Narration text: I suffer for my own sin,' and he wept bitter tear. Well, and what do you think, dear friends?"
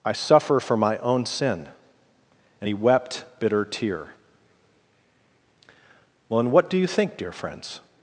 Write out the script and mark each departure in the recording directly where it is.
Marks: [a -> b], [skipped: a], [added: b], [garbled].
I suffer for my own sin,' and he wept bitter tear. Well, and what do you think, dear friends?"